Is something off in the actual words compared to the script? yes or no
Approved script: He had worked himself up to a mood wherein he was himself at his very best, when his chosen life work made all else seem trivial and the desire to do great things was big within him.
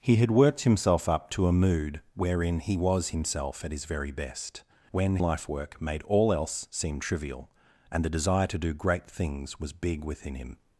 yes